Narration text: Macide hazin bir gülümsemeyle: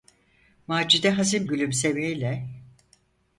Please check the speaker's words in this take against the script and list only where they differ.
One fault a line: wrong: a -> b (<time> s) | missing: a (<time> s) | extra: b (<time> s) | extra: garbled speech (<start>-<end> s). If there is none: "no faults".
missing: bir (1.5 s)